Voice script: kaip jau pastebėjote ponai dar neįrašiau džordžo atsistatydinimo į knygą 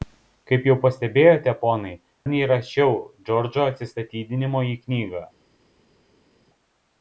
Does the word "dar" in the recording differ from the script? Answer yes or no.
yes